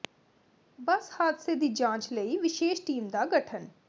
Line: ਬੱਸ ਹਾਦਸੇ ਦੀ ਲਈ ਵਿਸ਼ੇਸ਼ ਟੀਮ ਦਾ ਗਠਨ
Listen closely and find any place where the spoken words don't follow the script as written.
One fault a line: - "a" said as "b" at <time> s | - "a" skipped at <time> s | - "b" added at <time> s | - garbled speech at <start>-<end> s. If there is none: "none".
- "ਜਾਂਚ" added at 1.7 s